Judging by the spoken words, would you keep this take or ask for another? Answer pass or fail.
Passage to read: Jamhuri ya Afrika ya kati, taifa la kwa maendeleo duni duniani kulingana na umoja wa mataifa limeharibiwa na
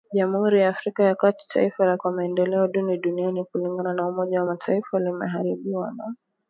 pass